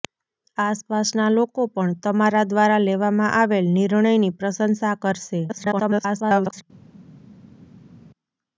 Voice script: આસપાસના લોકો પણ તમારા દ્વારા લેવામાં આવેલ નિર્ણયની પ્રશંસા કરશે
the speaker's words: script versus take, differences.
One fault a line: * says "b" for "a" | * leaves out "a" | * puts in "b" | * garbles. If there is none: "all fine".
* garbles